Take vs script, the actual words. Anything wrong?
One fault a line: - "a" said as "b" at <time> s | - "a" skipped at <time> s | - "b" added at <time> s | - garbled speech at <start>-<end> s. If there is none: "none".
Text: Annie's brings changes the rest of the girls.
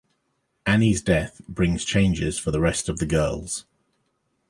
- "death" added at 1.0 s
- "for" added at 2.4 s